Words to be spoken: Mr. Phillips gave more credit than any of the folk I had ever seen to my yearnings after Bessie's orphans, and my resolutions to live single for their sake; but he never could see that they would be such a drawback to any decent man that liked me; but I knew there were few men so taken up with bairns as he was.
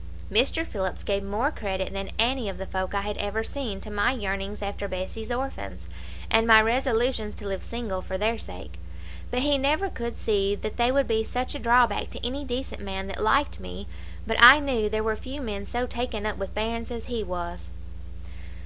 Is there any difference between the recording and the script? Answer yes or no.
no